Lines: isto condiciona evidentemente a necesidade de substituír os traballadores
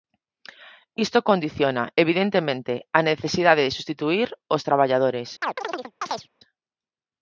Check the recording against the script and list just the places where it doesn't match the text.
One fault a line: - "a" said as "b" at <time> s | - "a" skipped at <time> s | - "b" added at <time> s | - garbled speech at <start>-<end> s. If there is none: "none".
none